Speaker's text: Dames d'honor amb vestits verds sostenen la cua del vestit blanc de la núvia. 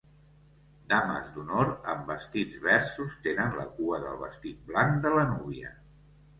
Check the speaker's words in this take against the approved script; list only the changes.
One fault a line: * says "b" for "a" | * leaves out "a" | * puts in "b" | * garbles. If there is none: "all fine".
all fine